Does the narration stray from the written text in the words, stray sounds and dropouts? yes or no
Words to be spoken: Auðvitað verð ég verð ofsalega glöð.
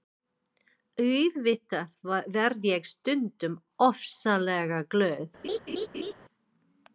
yes